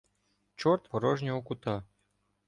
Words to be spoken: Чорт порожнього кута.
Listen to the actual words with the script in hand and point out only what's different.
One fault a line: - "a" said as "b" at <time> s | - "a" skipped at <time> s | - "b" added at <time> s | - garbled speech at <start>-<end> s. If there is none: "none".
none